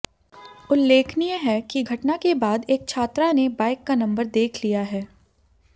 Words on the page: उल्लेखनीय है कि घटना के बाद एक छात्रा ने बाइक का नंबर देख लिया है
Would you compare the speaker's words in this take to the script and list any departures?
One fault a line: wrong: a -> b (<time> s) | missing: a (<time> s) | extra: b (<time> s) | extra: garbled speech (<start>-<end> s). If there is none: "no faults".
no faults